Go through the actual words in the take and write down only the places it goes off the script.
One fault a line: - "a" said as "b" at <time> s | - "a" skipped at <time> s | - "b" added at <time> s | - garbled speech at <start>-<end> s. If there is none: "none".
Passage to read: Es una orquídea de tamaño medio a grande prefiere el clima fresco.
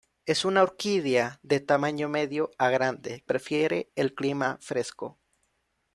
none